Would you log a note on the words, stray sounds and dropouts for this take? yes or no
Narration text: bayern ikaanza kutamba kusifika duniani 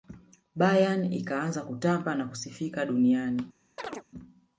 yes